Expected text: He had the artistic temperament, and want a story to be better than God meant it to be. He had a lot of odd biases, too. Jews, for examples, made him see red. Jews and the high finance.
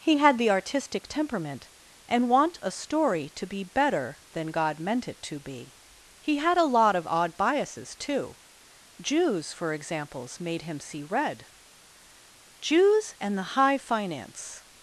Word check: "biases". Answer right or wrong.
right